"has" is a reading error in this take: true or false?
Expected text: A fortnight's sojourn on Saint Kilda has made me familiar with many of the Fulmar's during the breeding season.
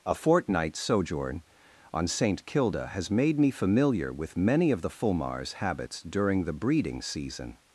false